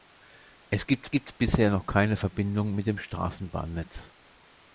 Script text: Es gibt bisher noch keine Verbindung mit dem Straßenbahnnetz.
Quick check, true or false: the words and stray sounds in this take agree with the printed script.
false